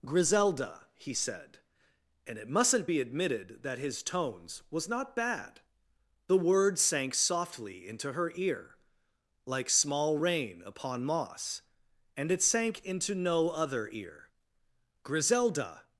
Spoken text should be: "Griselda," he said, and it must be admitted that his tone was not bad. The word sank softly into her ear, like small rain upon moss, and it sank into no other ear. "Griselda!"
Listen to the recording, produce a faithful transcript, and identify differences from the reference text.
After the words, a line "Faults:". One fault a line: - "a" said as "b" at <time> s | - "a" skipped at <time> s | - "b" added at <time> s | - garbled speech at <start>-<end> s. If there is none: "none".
"Griselda," he said, and it mustn't be admitted that his tones was not bad. The word sank softly into her ear, like small rain upon moss, and it sank into no other ear. "Griselda!"
Faults:
- "must" said as "mustn't" at 2.5 s
- "tone" said as "tones" at 4.0 s